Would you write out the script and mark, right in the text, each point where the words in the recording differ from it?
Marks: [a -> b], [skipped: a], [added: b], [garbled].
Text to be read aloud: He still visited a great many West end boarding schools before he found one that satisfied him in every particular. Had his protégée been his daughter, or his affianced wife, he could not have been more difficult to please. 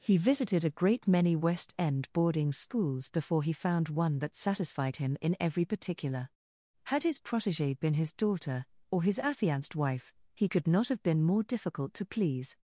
He [skipped: still] visited a great many West end boarding schools before he found one that satisfied him in every particular. Had his protégée been his daughter, or his affianced wife, he could not have been more difficult to please.